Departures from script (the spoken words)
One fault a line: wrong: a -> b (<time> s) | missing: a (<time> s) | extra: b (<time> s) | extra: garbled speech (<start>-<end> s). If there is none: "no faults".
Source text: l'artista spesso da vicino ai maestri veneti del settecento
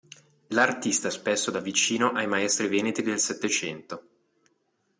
no faults